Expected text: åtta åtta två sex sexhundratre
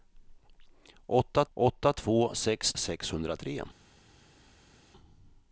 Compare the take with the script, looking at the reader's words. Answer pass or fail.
pass